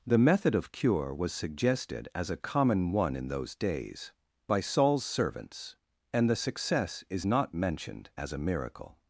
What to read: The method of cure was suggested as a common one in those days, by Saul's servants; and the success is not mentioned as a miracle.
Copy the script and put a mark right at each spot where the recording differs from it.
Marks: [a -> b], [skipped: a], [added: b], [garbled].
The method of cure was suggested as a common one in those days, by Saul's servants; and the success is not mentioned as a miracle.